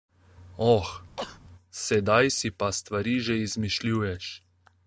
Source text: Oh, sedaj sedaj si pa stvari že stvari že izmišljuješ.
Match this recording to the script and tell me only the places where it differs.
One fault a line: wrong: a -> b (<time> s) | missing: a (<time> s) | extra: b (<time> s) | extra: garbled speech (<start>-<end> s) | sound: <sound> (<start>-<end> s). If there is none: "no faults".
sound: sneeze (1.2-1.4 s)
missing: sedaj (2.3 s)
missing: stvari že (3.4 s)